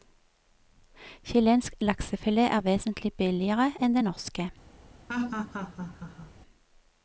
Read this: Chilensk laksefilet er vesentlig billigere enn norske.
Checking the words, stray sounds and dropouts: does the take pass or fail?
fail